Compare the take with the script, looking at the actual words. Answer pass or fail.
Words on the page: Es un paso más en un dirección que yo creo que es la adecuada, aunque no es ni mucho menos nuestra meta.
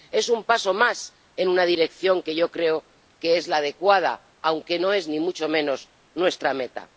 fail